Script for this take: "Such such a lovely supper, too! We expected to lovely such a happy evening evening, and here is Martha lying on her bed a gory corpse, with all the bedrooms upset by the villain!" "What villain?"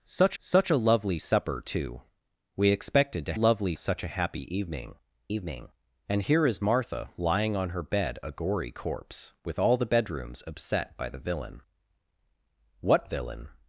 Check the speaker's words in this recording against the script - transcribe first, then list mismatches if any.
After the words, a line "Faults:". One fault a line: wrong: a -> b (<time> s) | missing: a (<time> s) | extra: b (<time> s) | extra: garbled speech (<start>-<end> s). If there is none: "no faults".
"Such such a lovely supper, too! We expected to lovely such a happy evening evening, and here is Martha lying on her bed a gory corpse, with all the bedrooms upset by the villain!" "What villain?"
Faults:
no faults